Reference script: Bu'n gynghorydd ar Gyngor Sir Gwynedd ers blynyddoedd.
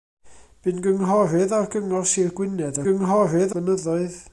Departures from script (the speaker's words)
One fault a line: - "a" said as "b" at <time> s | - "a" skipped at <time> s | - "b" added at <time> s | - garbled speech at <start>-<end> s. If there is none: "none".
- "ers" said as "gynghorydd" at 2.9 s